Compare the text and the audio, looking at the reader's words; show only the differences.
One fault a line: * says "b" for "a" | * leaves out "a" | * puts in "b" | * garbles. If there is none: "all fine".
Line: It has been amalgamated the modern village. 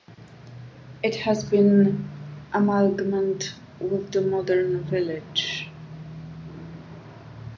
* puts in "with"